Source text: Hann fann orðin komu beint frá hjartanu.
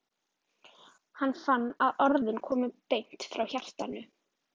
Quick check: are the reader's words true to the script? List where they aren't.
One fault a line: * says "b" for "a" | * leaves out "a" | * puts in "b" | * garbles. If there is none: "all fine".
* puts in "að"